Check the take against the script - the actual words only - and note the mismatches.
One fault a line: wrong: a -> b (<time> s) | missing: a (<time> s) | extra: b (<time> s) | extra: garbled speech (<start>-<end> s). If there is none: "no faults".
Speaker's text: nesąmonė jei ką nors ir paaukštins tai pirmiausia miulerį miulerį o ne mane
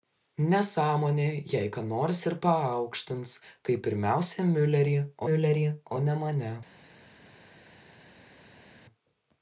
no faults